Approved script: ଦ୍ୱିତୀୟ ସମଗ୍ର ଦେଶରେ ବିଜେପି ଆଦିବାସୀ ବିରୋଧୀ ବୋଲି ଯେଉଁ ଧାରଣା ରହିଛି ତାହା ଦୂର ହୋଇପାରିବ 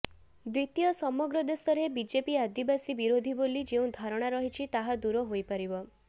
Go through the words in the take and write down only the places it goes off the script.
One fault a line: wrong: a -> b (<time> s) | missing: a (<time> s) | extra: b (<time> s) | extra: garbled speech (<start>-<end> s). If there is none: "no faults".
no faults